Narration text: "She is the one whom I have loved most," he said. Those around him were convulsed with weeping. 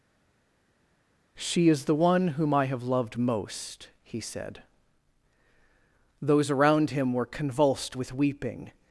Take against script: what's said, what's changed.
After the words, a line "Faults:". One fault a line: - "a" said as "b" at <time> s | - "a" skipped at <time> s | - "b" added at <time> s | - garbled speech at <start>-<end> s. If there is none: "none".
"She is the one whom I have loved most," he said. Those around him were convulsed with weeping.
Faults:
none